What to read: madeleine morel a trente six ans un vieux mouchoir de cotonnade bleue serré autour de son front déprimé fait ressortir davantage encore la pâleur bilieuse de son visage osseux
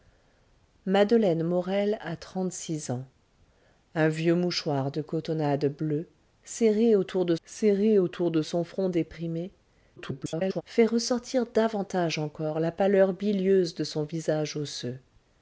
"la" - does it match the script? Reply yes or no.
yes